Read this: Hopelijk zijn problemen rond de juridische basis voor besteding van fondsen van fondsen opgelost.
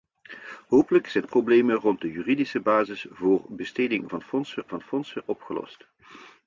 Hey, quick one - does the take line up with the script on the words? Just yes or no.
yes